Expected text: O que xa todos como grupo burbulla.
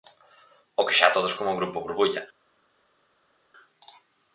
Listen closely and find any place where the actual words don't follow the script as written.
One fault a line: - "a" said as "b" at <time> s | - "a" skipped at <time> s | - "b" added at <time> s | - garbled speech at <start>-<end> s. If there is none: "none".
none